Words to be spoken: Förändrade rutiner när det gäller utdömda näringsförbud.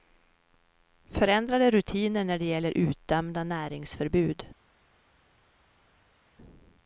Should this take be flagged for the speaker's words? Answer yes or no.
no